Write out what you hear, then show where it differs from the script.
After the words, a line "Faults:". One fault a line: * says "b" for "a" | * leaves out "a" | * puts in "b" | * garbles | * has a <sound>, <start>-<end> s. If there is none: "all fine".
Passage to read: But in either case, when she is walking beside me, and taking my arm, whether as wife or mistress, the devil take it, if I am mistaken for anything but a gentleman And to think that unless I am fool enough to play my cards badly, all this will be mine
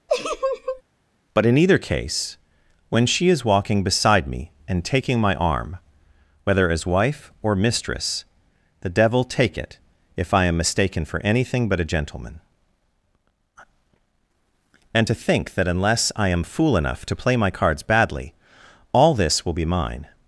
But in either case, when she is walking beside me, and taking my arm, whether as wife or mistress, the devil take it, if I am mistaken for anything but a gentleman And to think that unless I am fool enough to play my cards badly, all this will be mine
Faults:
* has a laugh, 0.1-0.8 s